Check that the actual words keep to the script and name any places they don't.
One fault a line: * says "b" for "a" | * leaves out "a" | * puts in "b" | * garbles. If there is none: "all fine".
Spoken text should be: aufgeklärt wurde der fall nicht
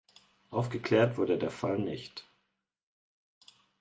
all fine